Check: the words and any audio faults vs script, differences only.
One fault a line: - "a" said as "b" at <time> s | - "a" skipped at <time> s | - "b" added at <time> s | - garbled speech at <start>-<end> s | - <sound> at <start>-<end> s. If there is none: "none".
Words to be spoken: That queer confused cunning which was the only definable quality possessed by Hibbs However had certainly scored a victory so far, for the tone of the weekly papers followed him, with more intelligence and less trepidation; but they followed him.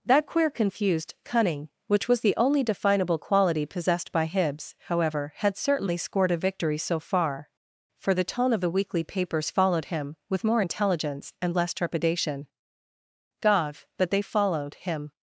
- "gov" added at 13.4 s